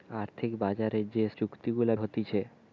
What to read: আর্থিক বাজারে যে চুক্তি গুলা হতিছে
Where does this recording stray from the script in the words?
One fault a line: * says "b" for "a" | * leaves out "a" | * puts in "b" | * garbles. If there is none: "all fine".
all fine